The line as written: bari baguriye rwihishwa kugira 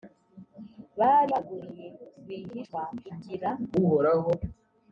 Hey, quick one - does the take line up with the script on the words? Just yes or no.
yes